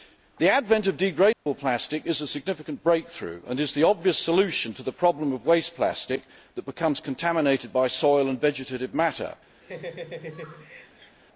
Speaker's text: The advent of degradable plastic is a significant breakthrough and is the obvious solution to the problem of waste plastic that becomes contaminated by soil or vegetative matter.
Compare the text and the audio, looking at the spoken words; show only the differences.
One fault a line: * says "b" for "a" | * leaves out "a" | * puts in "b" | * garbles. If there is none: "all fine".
* says "and" for "or"